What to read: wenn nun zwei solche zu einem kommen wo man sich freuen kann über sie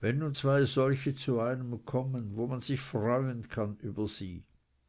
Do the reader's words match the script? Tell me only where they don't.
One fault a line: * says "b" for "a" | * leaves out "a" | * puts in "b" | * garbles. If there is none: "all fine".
all fine